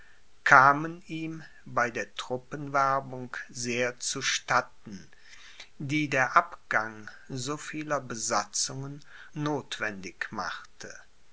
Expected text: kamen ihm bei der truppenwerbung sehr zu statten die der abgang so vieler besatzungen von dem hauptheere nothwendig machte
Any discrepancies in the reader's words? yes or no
yes